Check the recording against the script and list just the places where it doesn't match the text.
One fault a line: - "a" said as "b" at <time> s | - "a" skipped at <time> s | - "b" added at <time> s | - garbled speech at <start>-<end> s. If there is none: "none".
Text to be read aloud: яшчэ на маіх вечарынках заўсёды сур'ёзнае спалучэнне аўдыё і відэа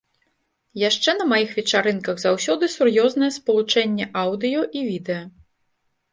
none